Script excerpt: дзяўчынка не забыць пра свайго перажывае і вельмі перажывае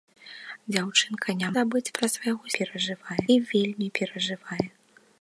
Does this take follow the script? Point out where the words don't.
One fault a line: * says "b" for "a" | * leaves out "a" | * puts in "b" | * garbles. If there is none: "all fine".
all fine